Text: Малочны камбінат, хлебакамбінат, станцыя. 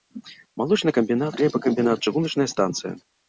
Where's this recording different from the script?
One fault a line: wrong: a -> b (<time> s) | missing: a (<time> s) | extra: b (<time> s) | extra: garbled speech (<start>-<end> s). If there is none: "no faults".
extra: чыгуначная (2.1 s)